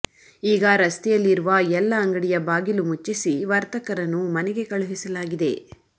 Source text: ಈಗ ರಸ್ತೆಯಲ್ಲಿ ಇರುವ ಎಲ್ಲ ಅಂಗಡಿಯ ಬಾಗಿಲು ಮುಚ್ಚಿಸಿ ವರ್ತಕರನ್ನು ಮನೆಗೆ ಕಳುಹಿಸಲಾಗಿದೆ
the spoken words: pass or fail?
pass